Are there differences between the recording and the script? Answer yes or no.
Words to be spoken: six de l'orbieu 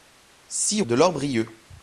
no